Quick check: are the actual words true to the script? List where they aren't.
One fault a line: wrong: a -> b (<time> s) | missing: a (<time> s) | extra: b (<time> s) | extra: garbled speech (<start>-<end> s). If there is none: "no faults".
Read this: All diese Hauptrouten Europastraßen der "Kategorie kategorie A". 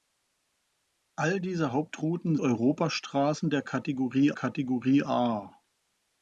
no faults